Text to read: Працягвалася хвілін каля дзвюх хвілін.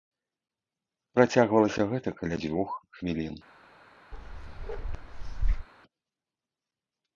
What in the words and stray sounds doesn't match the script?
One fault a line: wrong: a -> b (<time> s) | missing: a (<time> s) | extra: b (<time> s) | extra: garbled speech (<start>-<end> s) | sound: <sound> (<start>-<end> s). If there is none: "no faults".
wrong: хвілін -> гэта (1.9 s)
sound: bark (4.1-5.7 s)